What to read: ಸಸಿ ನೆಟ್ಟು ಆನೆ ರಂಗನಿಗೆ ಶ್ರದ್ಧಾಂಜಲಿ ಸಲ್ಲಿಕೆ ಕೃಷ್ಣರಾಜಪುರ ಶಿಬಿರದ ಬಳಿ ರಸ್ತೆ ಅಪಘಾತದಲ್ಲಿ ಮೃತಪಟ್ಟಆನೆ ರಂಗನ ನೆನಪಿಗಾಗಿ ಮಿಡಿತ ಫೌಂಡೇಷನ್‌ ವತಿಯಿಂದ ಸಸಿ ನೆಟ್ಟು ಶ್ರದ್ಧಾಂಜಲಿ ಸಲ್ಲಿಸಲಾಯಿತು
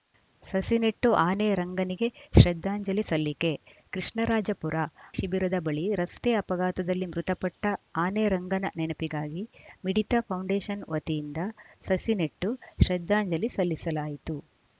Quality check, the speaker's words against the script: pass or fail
pass